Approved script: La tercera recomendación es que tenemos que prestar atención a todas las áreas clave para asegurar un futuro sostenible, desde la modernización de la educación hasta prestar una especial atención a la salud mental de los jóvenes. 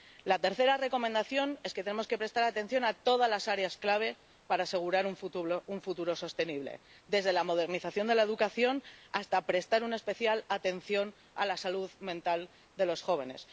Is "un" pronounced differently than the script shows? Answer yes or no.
no